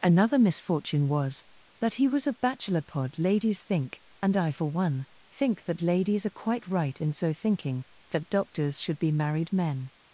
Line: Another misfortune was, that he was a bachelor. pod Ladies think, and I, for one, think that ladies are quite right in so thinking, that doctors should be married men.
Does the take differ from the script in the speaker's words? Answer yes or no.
no